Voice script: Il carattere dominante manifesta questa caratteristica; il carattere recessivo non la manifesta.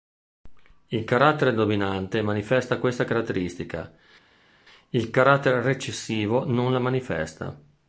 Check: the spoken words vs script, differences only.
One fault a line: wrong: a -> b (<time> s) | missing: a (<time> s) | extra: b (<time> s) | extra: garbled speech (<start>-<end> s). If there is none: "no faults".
no faults